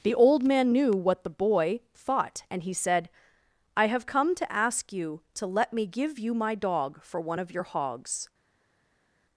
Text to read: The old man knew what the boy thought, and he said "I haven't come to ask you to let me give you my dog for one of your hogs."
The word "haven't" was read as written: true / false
false